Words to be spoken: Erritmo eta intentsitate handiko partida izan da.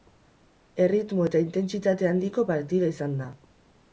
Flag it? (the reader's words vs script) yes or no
no